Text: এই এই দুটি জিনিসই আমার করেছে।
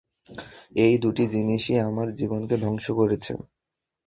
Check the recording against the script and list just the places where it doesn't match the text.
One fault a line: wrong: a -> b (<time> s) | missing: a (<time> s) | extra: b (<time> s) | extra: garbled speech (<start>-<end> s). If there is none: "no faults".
missing: এই (0.9 s)
extra: জীবনকে ধ্বংস (2.2 s)